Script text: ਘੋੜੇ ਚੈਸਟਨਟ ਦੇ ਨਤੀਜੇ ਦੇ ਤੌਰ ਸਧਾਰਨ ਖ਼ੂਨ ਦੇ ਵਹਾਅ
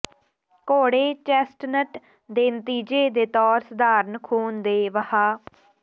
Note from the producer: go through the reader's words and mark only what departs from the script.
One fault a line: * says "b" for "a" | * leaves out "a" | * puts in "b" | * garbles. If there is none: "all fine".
all fine